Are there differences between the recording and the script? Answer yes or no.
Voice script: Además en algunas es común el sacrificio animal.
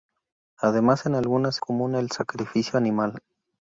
yes